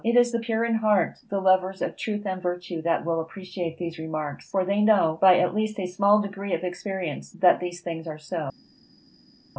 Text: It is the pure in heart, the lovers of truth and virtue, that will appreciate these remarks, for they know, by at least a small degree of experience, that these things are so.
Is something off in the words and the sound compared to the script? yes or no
no